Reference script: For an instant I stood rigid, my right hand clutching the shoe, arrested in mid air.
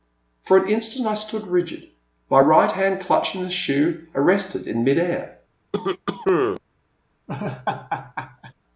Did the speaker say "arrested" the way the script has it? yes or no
yes